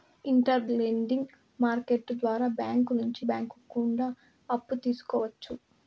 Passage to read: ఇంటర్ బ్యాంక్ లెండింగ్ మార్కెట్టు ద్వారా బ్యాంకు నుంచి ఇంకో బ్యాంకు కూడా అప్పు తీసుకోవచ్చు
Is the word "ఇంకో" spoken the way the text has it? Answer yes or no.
no